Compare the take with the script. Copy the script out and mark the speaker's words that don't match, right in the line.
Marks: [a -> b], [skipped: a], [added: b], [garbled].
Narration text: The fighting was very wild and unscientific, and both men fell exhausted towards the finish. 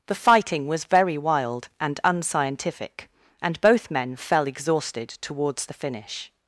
The fighting was very wild and unscientific, and both men fell exhausted towards the finish.